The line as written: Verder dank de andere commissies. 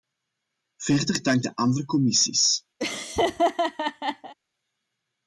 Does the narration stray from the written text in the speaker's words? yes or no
no